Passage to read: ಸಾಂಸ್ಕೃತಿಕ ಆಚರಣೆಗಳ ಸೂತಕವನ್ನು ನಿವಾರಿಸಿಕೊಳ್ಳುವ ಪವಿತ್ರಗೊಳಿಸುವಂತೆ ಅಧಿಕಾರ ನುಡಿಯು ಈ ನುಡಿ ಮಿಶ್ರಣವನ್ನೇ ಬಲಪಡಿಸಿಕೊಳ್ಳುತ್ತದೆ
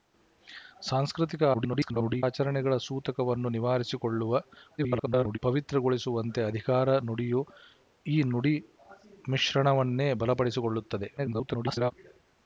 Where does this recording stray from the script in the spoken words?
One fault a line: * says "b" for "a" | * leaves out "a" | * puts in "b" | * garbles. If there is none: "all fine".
* garbles
* garbles
* garbles